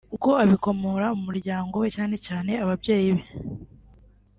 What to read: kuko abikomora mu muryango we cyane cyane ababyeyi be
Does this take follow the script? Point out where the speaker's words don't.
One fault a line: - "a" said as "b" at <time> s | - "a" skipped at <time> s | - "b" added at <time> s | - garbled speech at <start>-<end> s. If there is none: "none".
none